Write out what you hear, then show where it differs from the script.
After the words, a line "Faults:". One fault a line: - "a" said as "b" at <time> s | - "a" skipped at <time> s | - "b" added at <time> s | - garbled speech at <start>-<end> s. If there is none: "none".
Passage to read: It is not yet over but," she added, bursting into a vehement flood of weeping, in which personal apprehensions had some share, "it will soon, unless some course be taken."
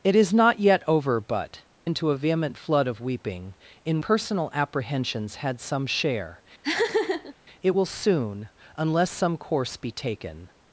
It is not yet over but," into a vehement flood of weeping, in personal apprehensions had some share, "it will soon, unless some course be taken."
Faults:
- "she added bursting" skipped at 1.6 s
- "which" skipped at 4.0 s